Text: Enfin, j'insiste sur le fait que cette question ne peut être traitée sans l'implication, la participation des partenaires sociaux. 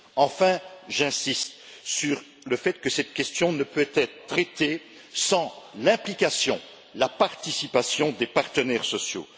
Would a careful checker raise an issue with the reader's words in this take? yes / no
no